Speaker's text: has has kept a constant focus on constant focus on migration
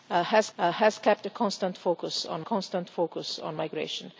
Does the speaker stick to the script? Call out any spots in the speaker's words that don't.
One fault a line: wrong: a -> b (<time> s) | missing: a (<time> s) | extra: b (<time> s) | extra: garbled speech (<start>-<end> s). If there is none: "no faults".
no faults